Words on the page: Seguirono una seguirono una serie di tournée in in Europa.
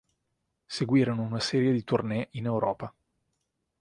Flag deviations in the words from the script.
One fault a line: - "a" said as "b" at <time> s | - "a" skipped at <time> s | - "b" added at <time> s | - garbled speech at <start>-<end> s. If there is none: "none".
- "seguirono una" skipped at 1.4 s
- "in" skipped at 2.5 s